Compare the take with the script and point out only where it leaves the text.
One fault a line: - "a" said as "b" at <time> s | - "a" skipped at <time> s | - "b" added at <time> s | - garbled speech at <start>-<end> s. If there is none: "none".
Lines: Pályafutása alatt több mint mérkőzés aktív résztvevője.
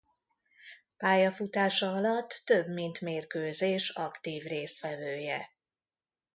none